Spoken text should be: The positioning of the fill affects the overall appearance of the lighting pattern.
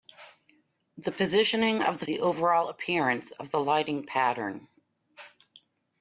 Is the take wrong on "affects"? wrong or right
wrong